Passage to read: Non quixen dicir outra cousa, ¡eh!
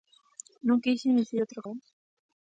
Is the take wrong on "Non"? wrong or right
right